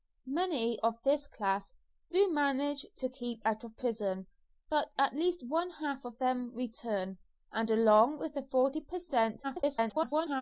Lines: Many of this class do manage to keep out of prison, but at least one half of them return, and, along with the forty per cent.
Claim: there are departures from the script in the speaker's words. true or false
true